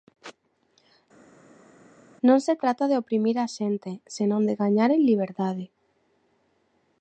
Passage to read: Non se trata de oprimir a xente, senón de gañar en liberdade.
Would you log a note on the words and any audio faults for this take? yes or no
no